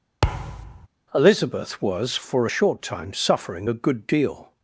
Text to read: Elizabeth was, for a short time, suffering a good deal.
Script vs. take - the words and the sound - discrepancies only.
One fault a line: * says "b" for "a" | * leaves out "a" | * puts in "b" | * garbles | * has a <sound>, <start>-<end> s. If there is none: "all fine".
* has a thud, 0.2-0.9 s